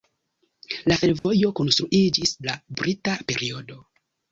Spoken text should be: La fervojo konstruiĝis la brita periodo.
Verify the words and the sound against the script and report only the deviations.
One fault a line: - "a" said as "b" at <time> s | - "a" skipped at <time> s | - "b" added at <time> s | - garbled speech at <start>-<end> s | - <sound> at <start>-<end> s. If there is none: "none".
- dropout at 1.2-1.2 s